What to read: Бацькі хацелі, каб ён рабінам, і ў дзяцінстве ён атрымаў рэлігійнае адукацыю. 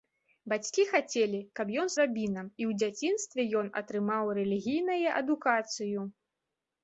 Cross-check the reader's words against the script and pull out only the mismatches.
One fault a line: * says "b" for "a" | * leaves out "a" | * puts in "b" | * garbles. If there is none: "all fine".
all fine